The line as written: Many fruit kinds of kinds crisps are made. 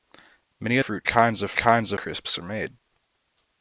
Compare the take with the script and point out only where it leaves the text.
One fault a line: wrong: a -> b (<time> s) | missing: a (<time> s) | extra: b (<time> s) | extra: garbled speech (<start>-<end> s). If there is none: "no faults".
no faults